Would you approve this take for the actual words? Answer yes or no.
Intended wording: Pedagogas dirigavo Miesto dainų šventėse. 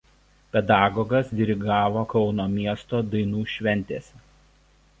no